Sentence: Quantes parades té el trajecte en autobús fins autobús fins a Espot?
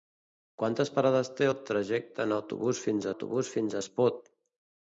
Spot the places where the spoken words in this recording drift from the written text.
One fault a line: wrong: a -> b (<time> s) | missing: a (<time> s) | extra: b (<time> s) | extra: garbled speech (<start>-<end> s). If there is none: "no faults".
no faults